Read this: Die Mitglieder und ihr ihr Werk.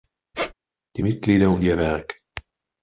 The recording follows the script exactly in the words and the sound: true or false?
false